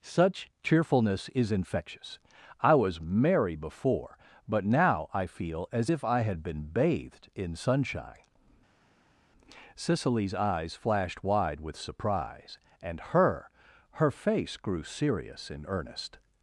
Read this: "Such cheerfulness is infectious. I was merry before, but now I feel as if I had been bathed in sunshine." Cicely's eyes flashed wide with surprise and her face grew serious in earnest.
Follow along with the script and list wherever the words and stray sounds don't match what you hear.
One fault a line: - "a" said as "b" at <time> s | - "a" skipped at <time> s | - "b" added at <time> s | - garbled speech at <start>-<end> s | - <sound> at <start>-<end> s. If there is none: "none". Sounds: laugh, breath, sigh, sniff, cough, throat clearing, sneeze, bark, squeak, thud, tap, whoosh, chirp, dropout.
- "her" added at 13.9 s